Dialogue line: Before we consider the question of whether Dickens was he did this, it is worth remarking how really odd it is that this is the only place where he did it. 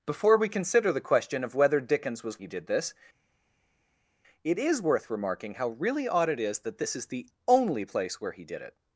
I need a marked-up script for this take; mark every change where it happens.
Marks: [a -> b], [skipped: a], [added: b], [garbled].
Before we consider the question of whether Dickens was he did this, it is worth remarking how really odd it is that this is the only place where he did it.